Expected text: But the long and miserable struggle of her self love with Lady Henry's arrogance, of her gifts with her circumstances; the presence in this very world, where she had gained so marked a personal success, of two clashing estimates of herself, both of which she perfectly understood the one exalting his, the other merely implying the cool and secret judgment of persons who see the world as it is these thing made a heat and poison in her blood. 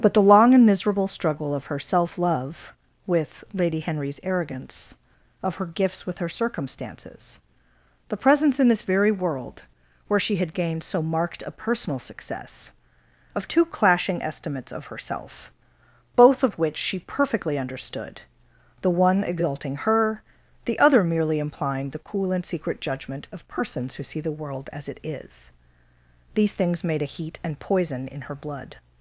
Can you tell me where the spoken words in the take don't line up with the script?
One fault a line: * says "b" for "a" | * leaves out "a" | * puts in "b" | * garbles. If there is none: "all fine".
* says "her" for "his"
* says "things" for "thing"